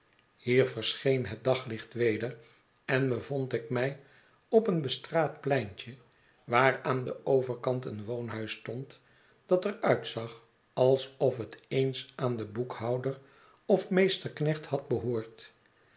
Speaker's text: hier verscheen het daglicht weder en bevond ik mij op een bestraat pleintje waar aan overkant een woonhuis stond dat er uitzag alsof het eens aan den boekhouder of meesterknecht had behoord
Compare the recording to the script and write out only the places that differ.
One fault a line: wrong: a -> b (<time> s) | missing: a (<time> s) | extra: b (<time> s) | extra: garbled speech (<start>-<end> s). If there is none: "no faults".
extra: den (7.0 s)